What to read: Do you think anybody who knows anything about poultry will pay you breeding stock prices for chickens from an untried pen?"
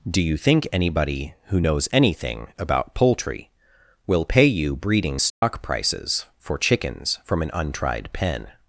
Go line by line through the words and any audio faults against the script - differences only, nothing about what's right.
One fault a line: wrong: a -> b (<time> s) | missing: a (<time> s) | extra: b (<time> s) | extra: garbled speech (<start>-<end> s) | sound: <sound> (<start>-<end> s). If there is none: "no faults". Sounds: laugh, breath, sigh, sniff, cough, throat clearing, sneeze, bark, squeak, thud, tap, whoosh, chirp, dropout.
sound: dropout (5.3-5.4 s)